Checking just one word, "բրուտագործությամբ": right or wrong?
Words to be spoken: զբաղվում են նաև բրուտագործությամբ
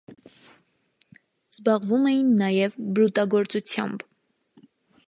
right